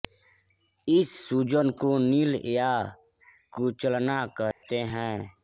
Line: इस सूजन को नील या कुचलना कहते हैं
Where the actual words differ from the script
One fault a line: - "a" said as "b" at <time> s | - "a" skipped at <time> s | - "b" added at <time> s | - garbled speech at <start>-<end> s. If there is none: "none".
none